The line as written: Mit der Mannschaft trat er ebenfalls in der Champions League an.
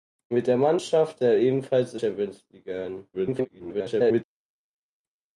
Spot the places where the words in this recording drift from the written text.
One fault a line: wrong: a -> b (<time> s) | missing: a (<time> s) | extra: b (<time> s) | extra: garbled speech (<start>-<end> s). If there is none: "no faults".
missing: trat (1.2 s)
missing: der (2.0 s)
extra: garbled speech (3.1-4.2 s)